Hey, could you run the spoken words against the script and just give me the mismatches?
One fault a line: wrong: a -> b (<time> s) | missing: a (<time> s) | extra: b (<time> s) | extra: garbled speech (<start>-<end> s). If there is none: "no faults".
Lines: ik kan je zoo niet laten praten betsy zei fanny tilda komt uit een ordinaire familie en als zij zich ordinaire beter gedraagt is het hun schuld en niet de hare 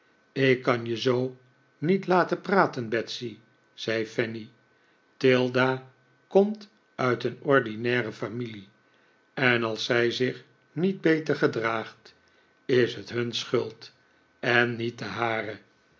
wrong: ordinaire -> niet (10.7 s)